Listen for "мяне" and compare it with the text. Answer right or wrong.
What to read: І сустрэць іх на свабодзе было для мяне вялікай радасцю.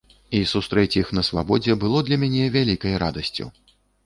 right